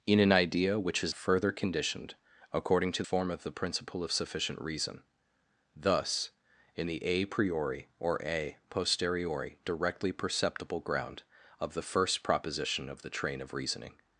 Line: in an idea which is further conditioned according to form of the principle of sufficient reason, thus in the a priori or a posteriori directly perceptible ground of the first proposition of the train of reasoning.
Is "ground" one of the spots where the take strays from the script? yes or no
no